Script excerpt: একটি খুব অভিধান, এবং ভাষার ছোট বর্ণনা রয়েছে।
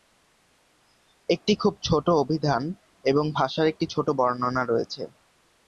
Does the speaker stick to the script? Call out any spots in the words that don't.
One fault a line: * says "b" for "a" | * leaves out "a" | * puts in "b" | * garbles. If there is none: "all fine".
* puts in "ছোট"
* puts in "একটি"